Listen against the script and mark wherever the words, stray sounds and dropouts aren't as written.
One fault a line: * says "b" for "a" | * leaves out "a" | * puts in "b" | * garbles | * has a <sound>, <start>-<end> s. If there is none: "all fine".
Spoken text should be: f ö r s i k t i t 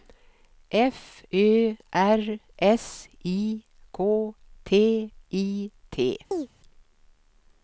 * has a chirp, 6.3-6.5 s